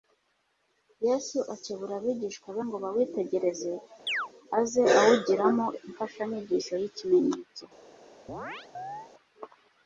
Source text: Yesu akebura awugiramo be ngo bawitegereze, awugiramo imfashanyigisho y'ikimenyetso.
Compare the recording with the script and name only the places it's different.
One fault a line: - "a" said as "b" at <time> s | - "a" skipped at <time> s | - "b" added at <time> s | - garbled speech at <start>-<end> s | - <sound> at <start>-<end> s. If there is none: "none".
- "awugiramo" said as "abigishwa" at 2.0 s
- chirp at 4.1-4.3 s
- "aze" added at 4.6 s
- chirp at 8.3-9.1 s